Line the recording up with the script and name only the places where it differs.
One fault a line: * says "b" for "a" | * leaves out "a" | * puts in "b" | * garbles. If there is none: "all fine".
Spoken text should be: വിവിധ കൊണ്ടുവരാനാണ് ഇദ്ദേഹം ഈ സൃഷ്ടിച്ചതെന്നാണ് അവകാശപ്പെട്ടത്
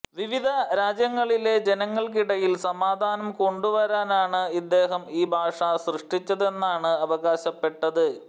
* puts in "രാജ്യങ്ങളിലെ ജനങ്ങൾക്കിടയിൽ സമാധാനം"
* puts in "ഭാഷ"